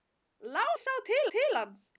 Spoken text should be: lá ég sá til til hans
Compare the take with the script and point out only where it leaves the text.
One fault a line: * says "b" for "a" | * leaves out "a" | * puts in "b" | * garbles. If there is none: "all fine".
all fine